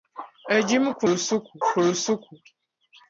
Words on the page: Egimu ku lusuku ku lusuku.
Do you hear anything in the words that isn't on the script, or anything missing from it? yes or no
no